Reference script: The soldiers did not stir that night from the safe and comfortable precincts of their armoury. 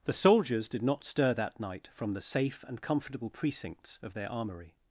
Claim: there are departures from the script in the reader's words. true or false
false